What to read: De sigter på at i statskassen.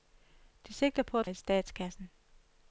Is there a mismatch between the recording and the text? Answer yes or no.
no